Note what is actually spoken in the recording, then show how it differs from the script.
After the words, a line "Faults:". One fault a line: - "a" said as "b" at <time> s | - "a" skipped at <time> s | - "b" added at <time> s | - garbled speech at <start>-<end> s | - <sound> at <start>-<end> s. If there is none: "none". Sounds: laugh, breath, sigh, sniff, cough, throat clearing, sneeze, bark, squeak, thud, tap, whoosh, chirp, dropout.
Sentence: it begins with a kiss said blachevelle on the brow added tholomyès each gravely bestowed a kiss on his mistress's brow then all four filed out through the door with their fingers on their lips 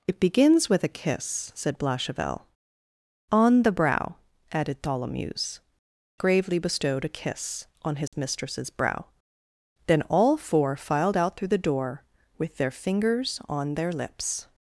it begins with a kiss said blachevelle on the brow added tholomyès gravely bestowed a kiss on his mistress's brow then all four filed out through the door with their fingers on their lips
Faults:
- "each" skipped at 5.6 s
- dropout at 8.1-8.1 s